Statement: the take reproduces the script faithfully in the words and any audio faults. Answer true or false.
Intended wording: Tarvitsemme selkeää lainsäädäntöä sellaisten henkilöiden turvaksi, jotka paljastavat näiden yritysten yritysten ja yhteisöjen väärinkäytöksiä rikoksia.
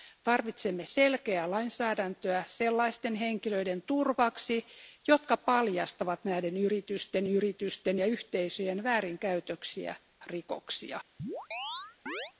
false